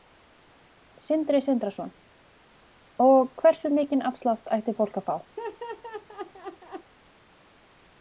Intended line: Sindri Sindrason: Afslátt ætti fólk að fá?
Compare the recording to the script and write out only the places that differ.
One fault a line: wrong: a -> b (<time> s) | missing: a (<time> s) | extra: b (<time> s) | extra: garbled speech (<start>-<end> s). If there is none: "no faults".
extra: Og hversu mikinn (3.1 s)